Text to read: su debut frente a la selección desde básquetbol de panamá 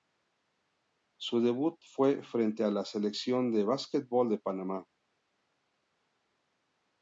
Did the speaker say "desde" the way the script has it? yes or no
no